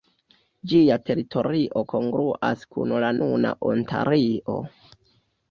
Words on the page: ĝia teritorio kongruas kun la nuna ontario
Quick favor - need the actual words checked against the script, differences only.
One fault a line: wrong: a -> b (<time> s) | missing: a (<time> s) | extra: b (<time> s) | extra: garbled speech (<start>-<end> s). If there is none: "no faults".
no faults